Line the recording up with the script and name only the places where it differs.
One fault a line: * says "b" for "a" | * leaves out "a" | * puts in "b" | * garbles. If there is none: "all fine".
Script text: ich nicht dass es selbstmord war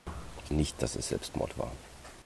all fine